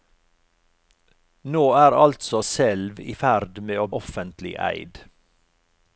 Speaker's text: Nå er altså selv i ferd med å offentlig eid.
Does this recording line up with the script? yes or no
yes